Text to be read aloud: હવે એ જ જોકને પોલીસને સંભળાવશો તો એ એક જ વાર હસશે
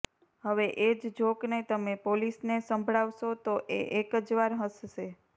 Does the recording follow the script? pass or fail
fail